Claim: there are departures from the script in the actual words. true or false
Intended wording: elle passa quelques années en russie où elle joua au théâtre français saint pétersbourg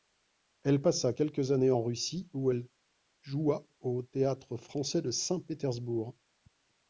true